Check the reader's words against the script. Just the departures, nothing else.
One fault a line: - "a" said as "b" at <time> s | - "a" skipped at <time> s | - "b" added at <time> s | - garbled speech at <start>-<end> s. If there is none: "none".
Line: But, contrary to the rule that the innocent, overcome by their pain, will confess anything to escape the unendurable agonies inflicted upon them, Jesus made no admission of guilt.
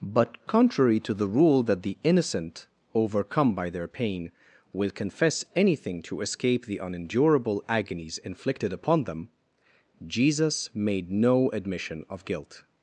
none